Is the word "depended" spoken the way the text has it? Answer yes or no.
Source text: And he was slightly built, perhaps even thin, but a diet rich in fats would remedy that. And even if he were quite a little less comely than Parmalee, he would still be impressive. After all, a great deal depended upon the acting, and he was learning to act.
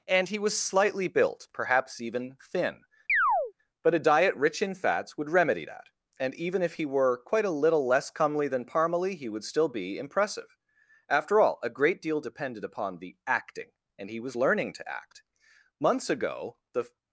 yes